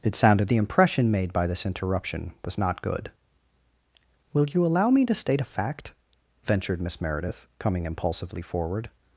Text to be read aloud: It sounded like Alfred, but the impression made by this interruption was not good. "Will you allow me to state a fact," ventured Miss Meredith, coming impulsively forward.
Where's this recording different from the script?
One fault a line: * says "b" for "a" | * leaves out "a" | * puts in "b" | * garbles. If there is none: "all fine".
* leaves out "like Alfred but"